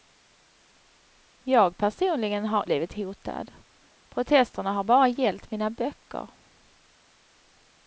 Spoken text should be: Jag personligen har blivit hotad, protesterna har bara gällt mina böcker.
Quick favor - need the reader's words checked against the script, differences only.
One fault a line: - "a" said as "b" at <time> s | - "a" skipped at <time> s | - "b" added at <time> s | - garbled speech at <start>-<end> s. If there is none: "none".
none